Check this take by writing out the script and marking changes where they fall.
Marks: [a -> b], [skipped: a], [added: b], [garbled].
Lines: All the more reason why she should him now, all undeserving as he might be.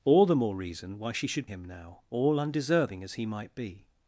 All the more reason why she should him now, all undeserving as he might be.